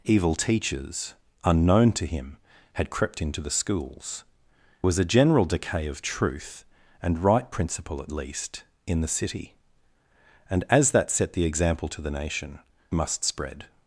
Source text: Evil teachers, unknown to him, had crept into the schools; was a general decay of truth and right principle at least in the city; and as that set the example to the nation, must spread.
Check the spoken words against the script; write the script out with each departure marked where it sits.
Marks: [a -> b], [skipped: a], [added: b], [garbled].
Evil teachers, unknown to him, had crept into the schools; was a general decay of truth and right principle at least in the city; and as that set the example to the nation, must spread.